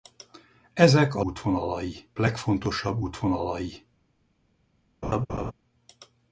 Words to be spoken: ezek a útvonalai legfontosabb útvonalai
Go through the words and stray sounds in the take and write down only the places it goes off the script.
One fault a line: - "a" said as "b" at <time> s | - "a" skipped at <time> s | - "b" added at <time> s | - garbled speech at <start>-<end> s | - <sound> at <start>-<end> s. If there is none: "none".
- laugh at 5.0-5.5 s